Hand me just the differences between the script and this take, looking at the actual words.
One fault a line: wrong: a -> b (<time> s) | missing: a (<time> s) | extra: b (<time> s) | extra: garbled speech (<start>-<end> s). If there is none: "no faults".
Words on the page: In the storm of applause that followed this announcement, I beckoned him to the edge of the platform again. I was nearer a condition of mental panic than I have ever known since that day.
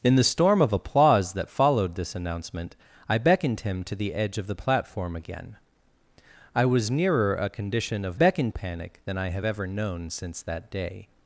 wrong: mental -> beckoned (8.1 s)